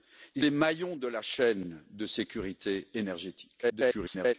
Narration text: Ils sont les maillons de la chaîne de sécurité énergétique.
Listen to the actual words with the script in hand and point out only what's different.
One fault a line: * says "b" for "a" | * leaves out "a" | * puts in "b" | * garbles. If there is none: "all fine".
* leaves out "sont"
* garbles